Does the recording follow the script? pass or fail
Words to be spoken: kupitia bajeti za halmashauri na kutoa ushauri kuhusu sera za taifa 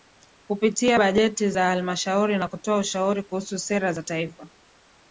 pass